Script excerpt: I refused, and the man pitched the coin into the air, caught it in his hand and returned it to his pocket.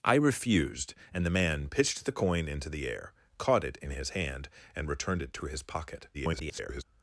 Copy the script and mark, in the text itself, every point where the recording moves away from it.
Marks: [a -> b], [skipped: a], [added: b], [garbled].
I refused, and the man pitched the coin into the air, caught it in his hand and returned it to his pocket. [garbled]